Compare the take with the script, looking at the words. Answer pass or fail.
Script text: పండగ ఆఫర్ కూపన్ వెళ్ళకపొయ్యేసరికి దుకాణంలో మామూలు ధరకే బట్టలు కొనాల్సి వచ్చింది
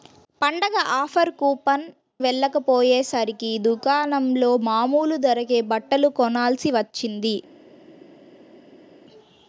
pass